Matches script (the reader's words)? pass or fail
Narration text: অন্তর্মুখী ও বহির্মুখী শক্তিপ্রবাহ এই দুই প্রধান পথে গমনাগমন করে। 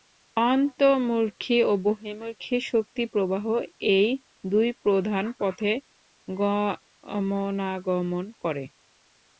pass